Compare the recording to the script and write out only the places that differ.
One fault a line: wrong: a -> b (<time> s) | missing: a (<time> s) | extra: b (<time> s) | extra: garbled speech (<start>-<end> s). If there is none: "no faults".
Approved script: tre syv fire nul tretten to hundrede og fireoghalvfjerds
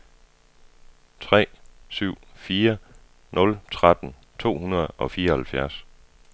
no faults